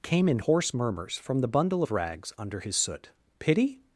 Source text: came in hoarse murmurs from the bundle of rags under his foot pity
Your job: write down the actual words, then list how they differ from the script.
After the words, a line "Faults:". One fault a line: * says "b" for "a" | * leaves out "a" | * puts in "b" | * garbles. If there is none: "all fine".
came in hoarse murmurs from the bundle of rags under his soot pity
Faults:
* says "soot" for "foot"